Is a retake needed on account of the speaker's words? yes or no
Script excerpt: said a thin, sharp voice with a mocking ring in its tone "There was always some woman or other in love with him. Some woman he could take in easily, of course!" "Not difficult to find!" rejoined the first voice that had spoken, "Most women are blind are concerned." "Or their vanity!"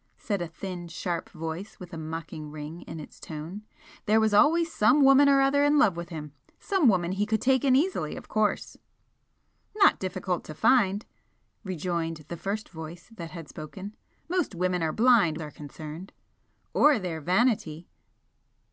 no